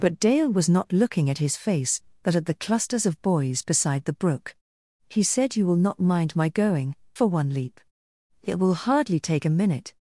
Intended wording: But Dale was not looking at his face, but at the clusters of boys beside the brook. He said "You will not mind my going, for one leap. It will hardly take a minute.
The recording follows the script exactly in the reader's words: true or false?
true